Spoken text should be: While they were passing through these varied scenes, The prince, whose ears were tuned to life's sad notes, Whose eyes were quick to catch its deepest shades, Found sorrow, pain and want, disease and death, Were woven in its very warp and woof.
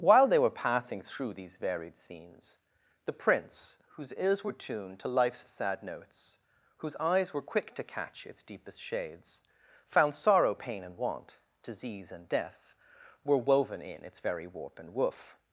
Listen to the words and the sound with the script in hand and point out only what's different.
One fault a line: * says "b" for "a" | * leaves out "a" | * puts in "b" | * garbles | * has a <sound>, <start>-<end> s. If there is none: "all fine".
all fine